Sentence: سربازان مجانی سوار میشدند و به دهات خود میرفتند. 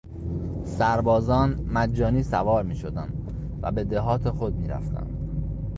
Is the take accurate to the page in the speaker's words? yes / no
yes